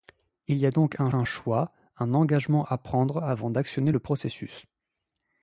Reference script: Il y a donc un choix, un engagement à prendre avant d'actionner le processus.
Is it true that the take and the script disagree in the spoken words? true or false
true